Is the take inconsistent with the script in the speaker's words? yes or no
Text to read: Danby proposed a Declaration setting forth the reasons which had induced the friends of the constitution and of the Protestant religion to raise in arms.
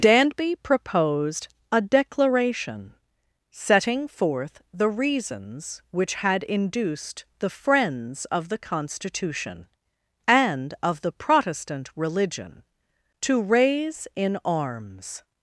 no